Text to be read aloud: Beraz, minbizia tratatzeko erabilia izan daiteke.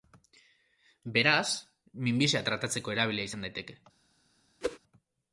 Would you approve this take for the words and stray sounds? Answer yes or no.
no